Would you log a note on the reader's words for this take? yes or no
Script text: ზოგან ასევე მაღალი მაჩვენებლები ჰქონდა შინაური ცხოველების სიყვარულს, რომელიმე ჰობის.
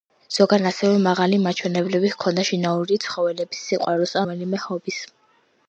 no